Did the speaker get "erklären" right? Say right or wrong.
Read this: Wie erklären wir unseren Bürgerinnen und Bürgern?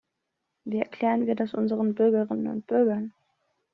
right